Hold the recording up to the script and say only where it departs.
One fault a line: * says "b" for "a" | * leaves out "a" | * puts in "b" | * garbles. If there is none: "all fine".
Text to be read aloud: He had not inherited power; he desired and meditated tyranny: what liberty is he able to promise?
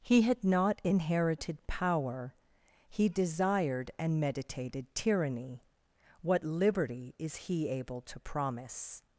all fine